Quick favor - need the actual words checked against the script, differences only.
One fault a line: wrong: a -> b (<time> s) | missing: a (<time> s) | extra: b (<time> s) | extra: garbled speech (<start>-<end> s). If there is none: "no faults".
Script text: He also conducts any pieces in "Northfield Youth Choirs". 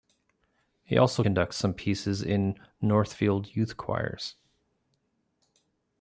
wrong: any -> some (1.5 s)